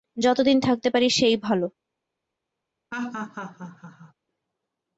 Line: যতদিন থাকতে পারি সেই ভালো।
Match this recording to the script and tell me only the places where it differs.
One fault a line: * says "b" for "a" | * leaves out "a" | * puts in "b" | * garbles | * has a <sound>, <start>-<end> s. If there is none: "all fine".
* has a laugh, 2.9-4.1 s